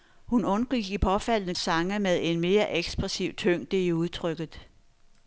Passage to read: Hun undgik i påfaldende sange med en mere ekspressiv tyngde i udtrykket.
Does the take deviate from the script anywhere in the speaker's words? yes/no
no